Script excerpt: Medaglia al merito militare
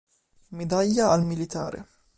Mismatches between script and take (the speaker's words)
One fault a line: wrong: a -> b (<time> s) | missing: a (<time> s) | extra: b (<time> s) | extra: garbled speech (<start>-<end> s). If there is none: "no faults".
missing: merito (1.2 s)